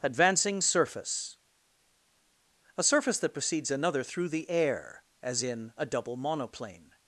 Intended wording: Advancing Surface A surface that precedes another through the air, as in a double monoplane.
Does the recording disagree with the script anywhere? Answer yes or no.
no